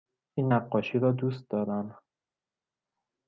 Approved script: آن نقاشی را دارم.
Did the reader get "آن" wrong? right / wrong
wrong